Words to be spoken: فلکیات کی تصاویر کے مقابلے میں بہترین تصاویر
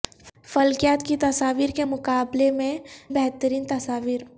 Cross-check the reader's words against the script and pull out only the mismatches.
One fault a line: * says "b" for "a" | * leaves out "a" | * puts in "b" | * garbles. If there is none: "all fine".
all fine